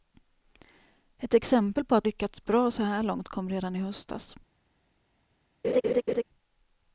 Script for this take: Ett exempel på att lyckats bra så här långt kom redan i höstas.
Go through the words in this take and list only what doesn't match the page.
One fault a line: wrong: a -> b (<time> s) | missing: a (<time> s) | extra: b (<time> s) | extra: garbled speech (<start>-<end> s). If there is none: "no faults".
no faults